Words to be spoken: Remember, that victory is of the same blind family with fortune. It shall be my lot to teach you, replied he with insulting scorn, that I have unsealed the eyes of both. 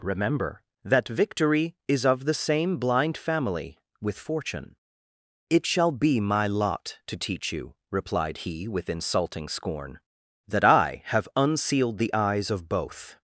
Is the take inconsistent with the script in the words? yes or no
no